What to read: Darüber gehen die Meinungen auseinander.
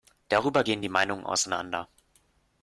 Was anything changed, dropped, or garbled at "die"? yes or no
no